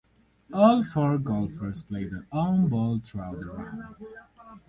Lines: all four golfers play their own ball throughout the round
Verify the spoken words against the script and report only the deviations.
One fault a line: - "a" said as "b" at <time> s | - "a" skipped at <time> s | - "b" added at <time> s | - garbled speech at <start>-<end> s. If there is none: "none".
none